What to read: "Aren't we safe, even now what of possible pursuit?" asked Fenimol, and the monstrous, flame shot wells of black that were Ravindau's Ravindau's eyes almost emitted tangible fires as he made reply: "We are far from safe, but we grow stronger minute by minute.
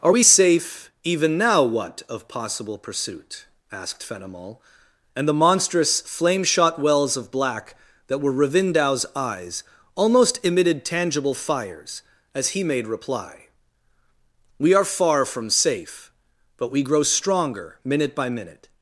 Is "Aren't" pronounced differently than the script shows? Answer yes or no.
yes